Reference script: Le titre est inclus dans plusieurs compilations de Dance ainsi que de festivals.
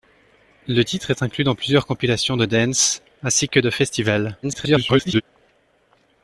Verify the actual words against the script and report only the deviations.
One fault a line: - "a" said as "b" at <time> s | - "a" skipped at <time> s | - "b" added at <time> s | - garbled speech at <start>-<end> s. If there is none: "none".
- garbled speech at 4.4-5.2 s